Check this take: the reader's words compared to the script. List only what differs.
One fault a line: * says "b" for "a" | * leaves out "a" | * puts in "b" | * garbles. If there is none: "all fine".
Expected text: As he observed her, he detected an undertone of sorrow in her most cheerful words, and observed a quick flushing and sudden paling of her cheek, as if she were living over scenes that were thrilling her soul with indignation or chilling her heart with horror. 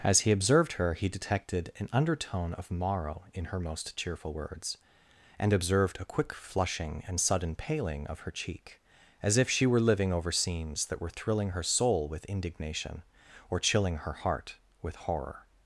* says "morrow" for "sorrow"